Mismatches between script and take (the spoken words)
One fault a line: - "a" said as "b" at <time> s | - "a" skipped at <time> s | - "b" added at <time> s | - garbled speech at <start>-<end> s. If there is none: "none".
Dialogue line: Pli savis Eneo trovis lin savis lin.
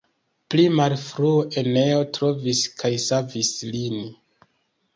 - "savis" said as "malfrue" at 0.8 s
- "lin" said as "kaj" at 2.8 s